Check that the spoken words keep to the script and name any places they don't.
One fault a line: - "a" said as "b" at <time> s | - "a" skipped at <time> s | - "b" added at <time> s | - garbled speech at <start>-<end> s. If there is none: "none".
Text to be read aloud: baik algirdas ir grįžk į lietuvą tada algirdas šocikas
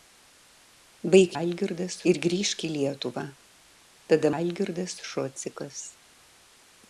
none